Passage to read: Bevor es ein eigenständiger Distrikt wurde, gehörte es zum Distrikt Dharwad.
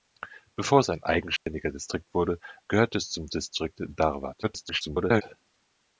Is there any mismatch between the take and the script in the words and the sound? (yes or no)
yes